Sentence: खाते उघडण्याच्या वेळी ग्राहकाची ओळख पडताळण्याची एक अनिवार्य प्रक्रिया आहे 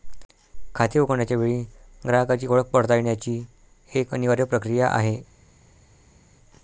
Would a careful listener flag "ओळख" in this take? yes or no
no